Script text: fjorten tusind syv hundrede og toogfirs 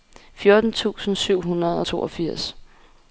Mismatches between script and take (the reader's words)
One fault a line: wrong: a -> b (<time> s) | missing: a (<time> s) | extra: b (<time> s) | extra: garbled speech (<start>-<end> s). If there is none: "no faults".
no faults